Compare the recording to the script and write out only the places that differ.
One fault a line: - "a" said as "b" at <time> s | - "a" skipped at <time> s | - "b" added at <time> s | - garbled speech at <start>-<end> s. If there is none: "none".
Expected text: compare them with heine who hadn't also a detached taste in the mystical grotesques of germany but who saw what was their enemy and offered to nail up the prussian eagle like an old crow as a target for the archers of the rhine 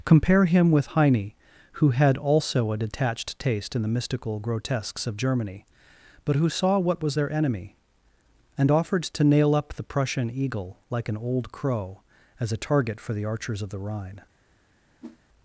- "them" said as "him" at 0.5 s
- "hadn't" said as "had" at 1.9 s